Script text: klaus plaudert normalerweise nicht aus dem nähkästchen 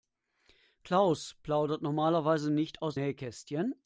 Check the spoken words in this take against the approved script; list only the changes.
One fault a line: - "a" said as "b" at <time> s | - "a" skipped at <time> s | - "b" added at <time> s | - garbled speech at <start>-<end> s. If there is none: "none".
- "dem" skipped at 3.0 s